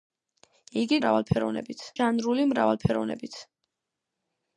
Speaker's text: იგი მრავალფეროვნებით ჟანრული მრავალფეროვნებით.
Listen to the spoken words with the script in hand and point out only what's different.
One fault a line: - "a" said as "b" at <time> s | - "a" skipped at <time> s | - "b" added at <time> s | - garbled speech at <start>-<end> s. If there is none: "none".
none